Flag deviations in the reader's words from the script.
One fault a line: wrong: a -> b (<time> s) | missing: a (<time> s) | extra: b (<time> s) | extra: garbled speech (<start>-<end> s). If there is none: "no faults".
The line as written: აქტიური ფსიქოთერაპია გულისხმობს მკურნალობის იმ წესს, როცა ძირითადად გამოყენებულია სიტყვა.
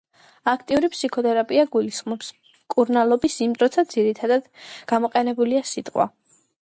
missing: წესს (3.5 s)